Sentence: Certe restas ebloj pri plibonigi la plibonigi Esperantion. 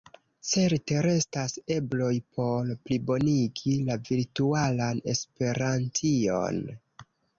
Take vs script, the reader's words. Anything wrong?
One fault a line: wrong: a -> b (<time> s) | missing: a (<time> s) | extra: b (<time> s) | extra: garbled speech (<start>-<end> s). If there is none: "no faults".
wrong: pri -> por (2.4 s)
wrong: plibonigi -> virtualan (4.1 s)